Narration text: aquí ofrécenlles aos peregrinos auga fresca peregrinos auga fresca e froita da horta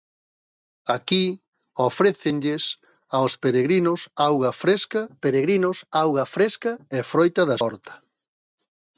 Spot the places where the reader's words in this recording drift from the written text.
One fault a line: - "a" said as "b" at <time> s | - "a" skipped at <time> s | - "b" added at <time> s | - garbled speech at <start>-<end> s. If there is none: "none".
none